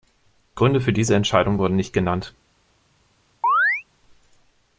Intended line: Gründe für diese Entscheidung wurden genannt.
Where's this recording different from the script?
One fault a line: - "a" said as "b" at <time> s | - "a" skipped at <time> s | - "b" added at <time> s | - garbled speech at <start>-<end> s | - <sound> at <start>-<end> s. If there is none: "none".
- "nicht" added at 1.7 s
- chirp at 3.4-3.8 s